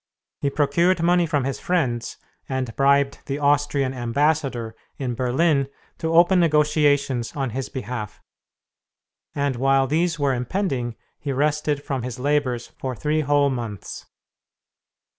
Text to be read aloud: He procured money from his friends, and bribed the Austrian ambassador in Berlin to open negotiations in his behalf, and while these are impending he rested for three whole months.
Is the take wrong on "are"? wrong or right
wrong